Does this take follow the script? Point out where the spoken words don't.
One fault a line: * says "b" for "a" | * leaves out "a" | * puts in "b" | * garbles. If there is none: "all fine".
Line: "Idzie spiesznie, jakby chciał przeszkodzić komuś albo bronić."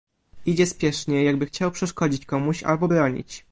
all fine